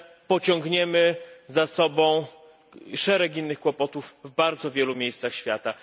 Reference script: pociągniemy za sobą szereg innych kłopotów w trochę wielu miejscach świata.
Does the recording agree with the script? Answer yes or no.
no